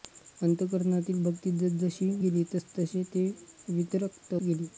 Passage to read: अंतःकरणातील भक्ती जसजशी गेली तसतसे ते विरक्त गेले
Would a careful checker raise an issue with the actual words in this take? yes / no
no